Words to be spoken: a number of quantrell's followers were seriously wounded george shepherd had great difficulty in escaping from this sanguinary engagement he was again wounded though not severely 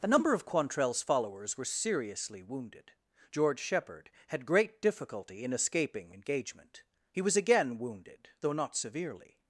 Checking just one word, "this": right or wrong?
wrong